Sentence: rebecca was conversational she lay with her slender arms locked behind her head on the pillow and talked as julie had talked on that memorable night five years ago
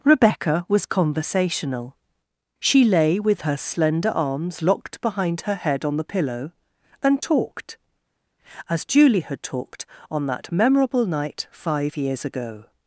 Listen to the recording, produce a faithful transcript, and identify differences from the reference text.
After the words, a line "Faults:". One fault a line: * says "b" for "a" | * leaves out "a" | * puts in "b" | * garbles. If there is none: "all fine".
rebecca was conversational she lay with her slender arms locked behind her head on the pillow and talked as julie had talked on that memorable night five years ago
Faults:
all fine